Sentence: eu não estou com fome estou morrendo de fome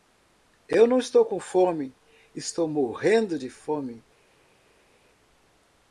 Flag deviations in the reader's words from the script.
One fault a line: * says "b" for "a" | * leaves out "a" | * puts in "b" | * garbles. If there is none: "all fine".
all fine